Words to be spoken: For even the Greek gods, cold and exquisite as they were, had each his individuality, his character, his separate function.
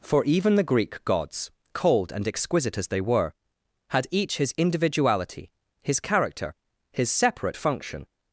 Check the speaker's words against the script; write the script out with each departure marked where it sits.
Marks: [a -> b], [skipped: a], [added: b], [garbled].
For even the Greek gods, cold and exquisite as they were, had each his individuality, his character, his separate function.